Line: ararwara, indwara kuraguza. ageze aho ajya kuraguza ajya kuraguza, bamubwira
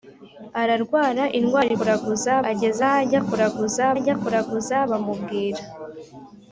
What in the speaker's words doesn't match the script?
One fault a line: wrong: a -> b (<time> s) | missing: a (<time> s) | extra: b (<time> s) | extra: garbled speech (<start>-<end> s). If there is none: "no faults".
no faults